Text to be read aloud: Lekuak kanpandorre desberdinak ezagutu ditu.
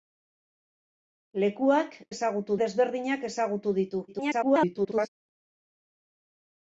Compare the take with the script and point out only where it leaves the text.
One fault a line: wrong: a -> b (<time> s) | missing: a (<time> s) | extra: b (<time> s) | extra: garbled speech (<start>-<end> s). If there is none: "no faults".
wrong: kanpandorre -> ezagutu (2.1 s)
extra: garbled speech (4.1-5.1 s)